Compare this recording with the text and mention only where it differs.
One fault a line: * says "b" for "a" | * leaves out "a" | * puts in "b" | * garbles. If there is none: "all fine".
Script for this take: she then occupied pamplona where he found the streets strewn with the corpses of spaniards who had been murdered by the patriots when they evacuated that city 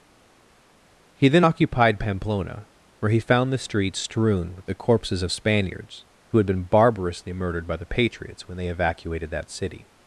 * says "he" for "she"
* puts in "barbarously"